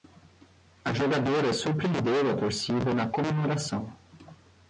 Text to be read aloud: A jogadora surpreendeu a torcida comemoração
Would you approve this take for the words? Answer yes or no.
no